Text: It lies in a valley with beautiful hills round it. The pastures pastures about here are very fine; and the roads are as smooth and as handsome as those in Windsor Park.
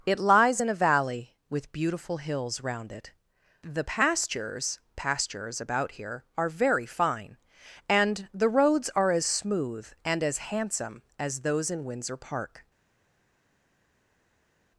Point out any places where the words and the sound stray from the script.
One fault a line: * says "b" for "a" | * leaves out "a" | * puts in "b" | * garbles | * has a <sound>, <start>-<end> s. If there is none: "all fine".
all fine